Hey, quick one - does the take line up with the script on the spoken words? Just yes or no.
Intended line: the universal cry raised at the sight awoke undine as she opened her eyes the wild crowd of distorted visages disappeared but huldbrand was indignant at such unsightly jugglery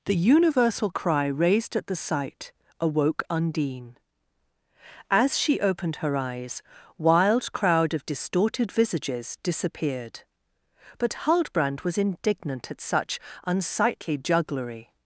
no